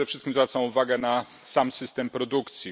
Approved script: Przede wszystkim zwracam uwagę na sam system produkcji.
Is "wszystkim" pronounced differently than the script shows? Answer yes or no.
no